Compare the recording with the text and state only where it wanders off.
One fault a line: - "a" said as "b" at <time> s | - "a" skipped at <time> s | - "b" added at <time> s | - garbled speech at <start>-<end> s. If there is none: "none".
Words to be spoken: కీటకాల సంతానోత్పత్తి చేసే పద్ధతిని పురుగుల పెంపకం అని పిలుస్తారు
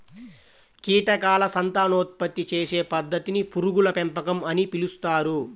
none